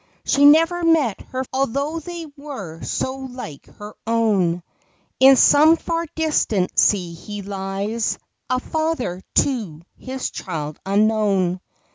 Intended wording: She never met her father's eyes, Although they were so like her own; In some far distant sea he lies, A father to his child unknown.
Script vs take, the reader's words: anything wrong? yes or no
yes